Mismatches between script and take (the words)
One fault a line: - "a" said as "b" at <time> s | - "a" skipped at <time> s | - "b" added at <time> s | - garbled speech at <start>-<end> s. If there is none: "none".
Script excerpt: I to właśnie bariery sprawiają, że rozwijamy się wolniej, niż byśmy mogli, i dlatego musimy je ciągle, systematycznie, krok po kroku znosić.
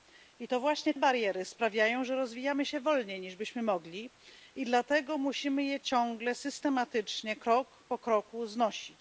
none